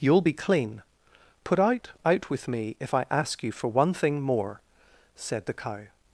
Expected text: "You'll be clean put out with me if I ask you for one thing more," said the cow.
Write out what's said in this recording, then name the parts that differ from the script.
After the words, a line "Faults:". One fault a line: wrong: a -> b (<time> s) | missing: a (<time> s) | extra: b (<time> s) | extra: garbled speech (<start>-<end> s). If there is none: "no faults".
"You'll be clean put out out with me if I ask you for one thing more," said the cow.
Faults:
extra: out (2.1 s)